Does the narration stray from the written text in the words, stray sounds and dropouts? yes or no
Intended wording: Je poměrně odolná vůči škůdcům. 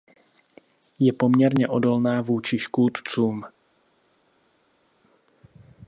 no